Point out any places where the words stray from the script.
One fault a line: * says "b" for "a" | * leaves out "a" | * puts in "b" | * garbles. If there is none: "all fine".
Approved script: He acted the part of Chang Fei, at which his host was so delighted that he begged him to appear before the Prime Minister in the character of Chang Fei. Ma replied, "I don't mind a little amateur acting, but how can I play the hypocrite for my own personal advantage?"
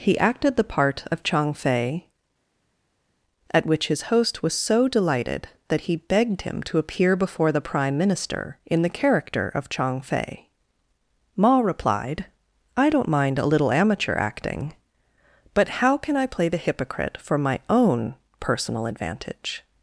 all fine